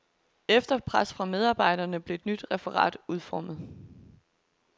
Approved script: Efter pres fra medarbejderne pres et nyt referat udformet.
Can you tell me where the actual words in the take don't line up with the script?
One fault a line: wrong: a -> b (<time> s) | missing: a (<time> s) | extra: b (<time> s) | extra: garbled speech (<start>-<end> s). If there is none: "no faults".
wrong: pres -> blev (2.0 s)